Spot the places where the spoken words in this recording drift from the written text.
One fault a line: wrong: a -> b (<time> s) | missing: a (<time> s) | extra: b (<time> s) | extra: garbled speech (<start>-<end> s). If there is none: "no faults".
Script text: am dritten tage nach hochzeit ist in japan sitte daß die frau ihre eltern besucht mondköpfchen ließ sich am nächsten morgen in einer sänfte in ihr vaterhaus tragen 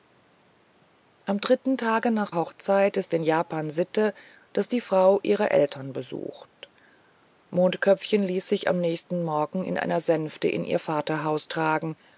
no faults